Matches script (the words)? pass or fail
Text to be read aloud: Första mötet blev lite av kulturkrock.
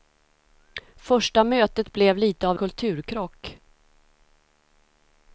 pass